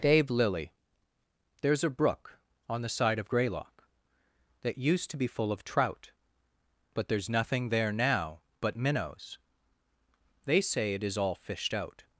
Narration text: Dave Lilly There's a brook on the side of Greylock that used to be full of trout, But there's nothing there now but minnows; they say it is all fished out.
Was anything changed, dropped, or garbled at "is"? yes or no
no